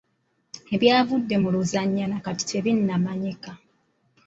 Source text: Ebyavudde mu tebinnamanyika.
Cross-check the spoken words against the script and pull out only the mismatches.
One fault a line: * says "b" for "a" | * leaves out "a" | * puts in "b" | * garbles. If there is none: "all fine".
* puts in "luzannya na kati"